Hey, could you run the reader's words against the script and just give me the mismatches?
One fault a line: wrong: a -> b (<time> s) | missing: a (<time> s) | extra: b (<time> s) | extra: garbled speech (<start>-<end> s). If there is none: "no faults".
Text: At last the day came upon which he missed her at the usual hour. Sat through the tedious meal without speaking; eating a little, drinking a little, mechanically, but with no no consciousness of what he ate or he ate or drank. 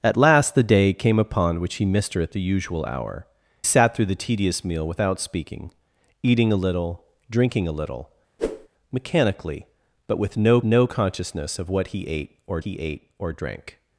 no faults